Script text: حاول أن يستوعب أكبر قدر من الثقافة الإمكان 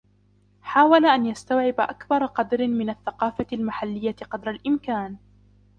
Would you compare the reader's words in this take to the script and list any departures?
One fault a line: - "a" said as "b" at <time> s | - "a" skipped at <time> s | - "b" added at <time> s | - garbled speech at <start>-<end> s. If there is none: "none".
- "المحلية قدر" added at 3.5 s